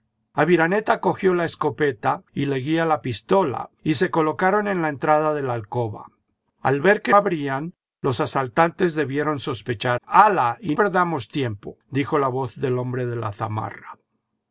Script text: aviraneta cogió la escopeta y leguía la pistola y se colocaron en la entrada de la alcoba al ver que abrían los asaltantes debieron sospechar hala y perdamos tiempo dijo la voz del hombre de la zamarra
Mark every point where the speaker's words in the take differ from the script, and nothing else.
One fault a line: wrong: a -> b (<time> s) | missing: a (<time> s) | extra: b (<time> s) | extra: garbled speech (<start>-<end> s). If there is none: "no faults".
no faults